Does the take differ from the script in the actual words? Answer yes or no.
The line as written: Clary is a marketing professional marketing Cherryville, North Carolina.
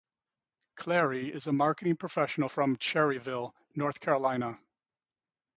yes